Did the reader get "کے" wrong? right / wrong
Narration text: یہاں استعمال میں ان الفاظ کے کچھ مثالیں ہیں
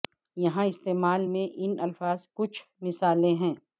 wrong